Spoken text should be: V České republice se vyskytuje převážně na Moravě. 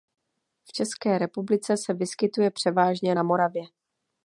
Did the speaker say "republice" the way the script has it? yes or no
yes